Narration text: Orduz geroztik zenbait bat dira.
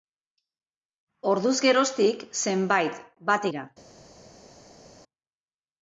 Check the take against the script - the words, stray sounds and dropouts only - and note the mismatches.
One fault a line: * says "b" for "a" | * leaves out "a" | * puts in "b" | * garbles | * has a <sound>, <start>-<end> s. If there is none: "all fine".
all fine